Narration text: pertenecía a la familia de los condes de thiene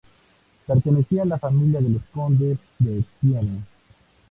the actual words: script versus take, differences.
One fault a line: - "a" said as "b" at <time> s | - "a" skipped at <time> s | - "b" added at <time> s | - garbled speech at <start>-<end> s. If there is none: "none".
none